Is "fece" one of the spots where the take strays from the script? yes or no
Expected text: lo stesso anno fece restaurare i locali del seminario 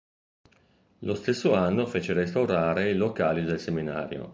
no